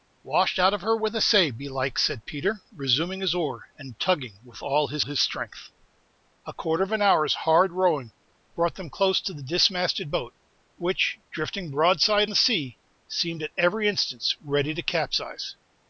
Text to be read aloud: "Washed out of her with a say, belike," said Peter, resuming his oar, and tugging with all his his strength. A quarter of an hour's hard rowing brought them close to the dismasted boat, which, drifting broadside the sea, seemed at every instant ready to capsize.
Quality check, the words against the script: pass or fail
pass